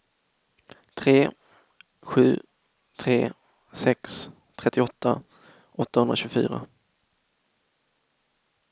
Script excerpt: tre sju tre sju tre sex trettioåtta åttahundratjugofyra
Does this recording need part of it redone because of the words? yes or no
yes